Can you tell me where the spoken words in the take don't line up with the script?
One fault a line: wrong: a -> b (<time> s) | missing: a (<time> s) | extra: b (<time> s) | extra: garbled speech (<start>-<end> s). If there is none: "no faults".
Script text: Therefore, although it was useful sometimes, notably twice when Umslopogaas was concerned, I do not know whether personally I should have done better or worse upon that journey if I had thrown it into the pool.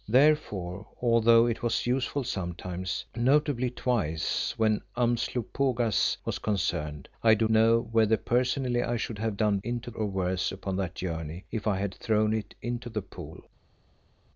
missing: not (7.5 s)
wrong: better -> into (9.6 s)